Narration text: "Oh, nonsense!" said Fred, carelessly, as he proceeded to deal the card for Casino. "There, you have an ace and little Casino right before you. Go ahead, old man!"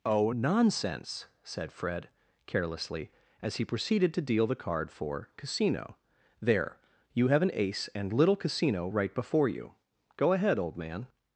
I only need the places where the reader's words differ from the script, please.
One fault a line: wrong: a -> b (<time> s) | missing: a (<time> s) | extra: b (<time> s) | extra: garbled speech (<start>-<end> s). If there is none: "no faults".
no faults